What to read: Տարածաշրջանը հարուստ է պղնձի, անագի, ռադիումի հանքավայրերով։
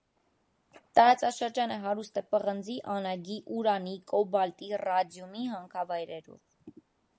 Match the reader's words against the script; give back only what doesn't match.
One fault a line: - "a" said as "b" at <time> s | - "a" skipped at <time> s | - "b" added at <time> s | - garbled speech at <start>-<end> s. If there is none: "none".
- "ուրանի կոբալտի" added at 3.6 s